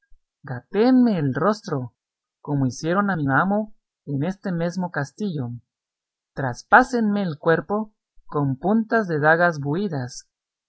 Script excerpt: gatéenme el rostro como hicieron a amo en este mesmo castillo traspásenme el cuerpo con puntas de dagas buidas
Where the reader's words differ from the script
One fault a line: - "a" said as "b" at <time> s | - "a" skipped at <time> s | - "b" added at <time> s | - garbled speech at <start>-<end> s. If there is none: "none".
- "mi" added at 3.1 s